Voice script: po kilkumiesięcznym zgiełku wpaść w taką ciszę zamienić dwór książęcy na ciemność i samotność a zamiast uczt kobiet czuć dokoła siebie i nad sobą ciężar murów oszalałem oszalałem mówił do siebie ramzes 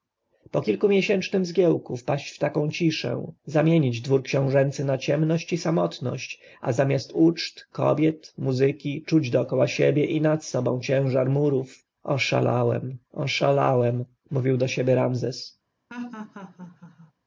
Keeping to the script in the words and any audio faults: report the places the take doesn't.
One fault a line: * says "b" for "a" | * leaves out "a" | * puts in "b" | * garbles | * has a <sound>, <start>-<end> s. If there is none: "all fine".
* puts in "muzyki"
* has a laugh, 15.9-17.1 s